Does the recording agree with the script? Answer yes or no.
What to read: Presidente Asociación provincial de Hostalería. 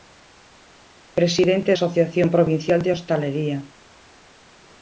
yes